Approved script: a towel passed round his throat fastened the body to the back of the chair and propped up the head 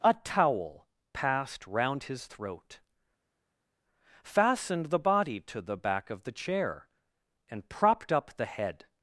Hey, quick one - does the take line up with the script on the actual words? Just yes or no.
yes